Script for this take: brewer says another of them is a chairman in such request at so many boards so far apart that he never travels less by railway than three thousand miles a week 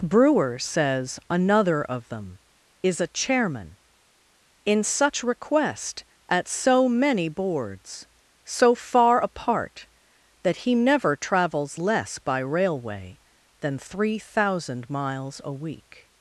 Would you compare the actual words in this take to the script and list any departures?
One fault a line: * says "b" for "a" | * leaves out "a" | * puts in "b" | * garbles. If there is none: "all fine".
all fine